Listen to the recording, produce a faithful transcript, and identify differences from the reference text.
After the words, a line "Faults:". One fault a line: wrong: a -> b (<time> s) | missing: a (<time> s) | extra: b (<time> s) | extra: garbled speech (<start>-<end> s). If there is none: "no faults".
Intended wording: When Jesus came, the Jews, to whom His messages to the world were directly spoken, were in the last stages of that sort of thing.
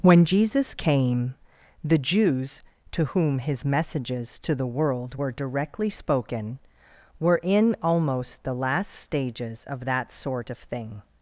When Jesus came, the Jews, to whom His messages to the world were directly spoken, were in almost the last stages of that sort of thing.
Faults:
extra: almost (7.8 s)